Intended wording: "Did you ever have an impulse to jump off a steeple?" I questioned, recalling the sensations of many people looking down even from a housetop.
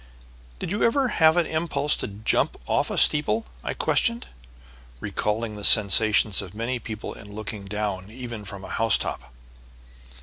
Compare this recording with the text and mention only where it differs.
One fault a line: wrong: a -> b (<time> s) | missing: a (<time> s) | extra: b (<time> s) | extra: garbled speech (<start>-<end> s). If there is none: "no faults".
extra: in (7.1 s)